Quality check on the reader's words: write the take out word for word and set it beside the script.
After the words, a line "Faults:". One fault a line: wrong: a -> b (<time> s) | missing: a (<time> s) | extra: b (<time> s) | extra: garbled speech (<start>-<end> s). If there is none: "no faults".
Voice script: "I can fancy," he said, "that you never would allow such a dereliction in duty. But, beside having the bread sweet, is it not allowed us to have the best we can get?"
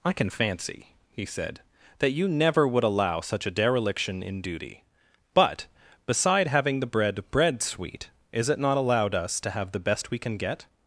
"I can fancy," he said, "that you never would allow such a dereliction in duty. But, beside having the bread bread sweet, is it not allowed us to have the best we can get?"
Faults:
extra: bread (7.3 s)